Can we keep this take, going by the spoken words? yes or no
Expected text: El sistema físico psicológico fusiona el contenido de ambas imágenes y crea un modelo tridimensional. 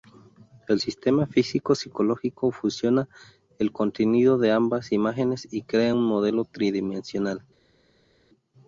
yes